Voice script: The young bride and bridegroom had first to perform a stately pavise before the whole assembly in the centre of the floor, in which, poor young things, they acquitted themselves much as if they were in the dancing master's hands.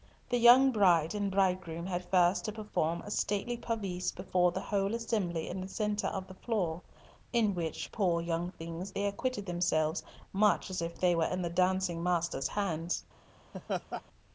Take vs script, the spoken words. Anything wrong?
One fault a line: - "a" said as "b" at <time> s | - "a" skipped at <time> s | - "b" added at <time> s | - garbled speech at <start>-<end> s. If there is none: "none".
none